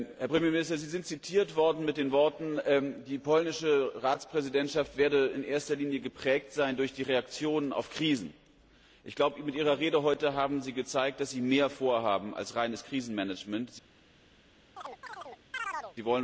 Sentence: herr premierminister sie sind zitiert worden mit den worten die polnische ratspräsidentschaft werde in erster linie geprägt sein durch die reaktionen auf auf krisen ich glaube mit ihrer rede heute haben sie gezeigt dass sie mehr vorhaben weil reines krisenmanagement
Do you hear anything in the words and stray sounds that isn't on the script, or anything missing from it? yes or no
yes